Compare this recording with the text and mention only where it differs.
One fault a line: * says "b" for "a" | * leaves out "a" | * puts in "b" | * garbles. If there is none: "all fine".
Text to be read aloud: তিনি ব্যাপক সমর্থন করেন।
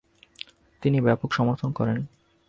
all fine